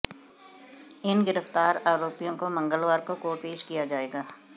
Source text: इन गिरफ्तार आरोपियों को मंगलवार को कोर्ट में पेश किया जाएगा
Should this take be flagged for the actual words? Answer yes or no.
yes